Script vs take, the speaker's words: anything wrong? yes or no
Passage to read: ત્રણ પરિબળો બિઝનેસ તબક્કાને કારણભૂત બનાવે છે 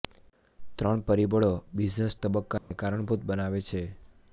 no